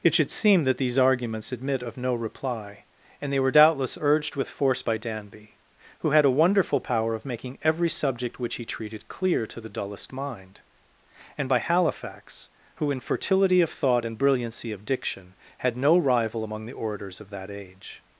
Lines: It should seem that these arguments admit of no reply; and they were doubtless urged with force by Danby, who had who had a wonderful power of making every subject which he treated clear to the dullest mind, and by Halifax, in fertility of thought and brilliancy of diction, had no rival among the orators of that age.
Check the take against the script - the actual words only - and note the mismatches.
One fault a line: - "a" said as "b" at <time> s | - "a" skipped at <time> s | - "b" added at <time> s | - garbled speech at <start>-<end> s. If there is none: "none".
- "who had" skipped at 6.2 s
- "who" added at 12.8 s